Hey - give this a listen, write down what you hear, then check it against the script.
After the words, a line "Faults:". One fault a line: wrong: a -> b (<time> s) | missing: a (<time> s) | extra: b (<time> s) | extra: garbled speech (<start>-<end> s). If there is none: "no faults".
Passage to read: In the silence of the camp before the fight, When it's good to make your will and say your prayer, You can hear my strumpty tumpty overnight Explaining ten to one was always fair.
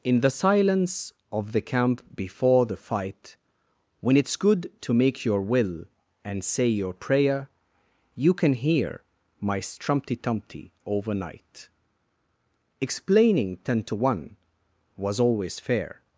In the silence of the camp before the fight, When it's good to make your will and say your prayer, You can hear my strumpty tumpty overnight Explaining ten to one was always fair.
Faults:
no faults